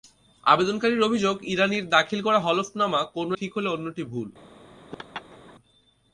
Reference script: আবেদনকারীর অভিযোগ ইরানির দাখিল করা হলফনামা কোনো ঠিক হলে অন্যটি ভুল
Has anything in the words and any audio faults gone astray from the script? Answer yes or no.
yes